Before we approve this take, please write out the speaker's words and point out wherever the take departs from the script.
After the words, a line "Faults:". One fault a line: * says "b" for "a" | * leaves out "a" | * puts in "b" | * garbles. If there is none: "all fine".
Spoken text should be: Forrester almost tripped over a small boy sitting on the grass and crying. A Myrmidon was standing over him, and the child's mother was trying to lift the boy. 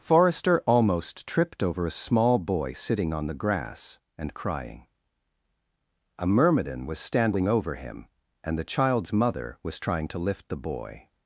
Forrester almost tripped over a small boy sitting on the grass and crying. A Myrmidon was standing over him, and the child's mother was trying to lift the boy.
Faults:
all fine